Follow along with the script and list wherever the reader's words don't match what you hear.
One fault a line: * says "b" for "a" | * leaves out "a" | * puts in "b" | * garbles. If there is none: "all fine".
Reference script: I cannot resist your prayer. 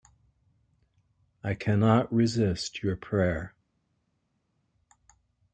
all fine